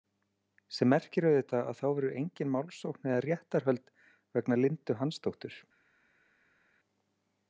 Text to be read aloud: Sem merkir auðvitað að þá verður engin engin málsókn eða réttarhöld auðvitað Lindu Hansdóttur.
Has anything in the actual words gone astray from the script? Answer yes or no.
yes